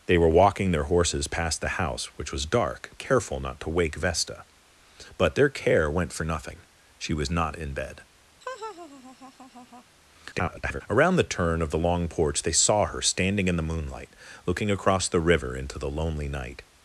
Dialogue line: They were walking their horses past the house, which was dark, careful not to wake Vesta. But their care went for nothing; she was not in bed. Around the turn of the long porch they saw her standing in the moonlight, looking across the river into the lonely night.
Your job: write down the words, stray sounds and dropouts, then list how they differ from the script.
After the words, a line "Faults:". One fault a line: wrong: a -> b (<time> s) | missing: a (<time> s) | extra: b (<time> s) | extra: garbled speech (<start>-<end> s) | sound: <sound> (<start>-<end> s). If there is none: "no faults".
They were walking their horses past the house, which was dark, careful not to wake Vesta. But their care went for nothing; she was not in bed. [garbled] Around the turn of the long porch they saw her standing in the moonlight, looking across the river into the lonely night.
Faults:
sound: laugh (8.4-9.8 s)
extra: garbled speech (10.3-10.8 s)